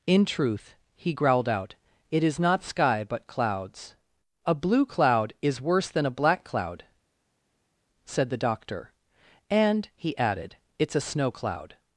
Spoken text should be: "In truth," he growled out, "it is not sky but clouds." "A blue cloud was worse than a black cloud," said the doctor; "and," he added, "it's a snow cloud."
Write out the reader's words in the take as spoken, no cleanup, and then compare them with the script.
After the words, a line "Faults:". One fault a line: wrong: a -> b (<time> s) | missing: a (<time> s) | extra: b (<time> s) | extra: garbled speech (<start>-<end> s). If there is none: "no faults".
"In truth," he growled out, "it is not sky but clouds." "A blue cloud is worse than a black cloud," said the doctor; "and," he added, "it's a snow cloud."
Faults:
wrong: was -> is (5.4 s)